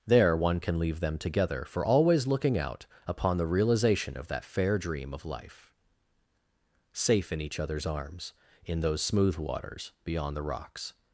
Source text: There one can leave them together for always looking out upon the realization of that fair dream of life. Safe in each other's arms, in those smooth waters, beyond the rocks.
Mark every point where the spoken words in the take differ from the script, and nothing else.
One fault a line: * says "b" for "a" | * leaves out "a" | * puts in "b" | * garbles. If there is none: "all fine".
all fine